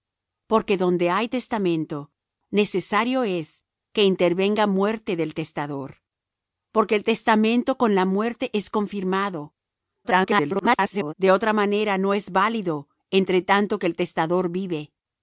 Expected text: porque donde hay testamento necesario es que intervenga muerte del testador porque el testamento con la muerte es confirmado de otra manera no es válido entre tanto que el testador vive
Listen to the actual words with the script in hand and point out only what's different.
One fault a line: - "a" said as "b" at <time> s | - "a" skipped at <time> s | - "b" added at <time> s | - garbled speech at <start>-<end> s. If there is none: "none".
- garbled speech at 10.0-11.1 s